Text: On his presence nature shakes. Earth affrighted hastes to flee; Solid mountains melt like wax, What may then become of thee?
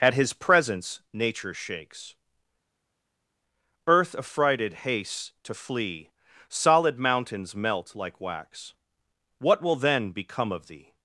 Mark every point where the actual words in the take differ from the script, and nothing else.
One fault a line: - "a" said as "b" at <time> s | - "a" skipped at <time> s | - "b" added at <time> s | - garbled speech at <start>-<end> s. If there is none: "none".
- "On" said as "At" at 0.0 s
- "may" said as "will" at 9.6 s